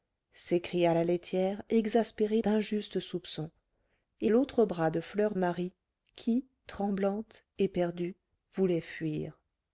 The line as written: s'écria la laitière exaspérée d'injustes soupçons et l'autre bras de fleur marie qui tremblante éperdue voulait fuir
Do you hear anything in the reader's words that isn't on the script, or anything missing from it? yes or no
no